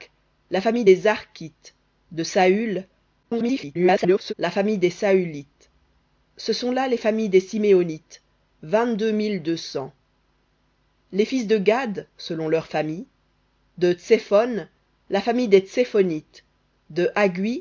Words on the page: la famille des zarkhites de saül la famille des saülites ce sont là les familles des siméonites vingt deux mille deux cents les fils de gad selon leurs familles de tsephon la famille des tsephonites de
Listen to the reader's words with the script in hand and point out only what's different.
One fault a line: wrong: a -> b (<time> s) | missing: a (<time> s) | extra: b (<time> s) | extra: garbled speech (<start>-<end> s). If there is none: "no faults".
extra: garbled speech (3.2-4.3 s)